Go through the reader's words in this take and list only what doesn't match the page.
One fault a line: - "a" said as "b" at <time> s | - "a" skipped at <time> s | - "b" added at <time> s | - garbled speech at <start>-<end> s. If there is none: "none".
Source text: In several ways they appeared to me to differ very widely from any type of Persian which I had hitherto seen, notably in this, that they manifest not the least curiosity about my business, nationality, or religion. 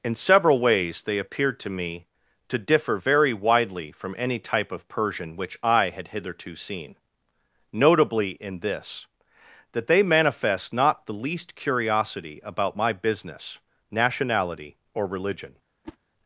none